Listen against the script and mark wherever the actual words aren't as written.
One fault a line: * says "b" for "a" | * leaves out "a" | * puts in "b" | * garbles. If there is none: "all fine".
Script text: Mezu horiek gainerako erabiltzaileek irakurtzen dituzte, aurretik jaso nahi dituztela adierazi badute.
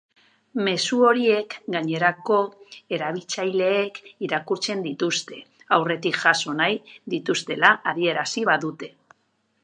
all fine